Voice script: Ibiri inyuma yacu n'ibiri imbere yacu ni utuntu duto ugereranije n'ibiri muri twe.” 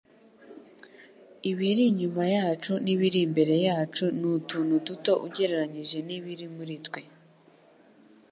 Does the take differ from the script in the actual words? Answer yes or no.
no